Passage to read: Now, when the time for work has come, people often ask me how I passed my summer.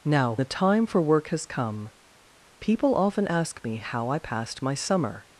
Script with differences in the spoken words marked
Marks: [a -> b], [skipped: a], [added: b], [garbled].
Now, [skipped: when] the time for work has come, people often ask me how I passed my summer.